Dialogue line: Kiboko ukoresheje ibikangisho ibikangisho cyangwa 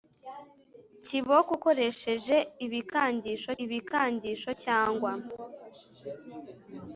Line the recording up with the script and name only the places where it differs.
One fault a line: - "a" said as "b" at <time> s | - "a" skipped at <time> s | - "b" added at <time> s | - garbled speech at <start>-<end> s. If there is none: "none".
none